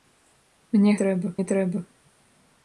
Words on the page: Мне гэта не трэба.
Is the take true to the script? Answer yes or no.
no